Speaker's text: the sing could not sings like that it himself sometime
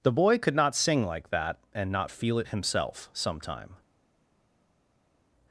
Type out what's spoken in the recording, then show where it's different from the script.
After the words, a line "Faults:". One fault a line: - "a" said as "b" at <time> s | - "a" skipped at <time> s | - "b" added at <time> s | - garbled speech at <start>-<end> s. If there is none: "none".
the boy could not sing like that and not feel it himself sometime
Faults:
- "sing" said as "boy" at 0.1 s
- "sings" said as "sing" at 0.8 s
- "and not feel" added at 1.8 s